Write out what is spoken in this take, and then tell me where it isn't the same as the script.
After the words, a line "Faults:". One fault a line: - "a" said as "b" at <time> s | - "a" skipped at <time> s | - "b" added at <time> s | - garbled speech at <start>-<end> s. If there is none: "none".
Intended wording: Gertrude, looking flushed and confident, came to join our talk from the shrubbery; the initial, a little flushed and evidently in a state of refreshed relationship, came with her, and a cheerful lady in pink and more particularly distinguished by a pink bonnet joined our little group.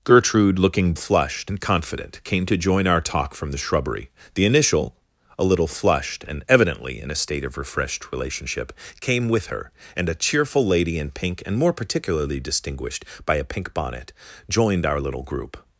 Gertrude, looking flushed and confident, came to join our talk from the shrubbery; the initial, a little flushed and evidently in a state of refreshed relationship, came with her, and a cheerful lady in pink and more particularly distinguished by a pink bonnet joined our little group.
Faults:
none